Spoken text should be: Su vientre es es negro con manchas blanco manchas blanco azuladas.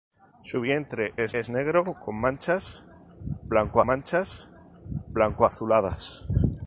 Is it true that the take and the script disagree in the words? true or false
false